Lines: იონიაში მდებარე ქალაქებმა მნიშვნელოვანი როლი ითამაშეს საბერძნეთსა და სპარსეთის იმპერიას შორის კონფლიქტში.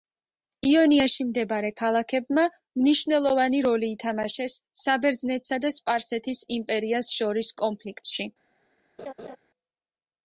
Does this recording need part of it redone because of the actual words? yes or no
no